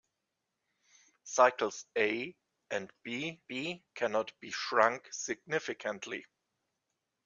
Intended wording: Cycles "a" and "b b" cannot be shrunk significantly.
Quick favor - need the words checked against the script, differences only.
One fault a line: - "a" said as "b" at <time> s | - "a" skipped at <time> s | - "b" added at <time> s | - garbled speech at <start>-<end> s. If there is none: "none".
none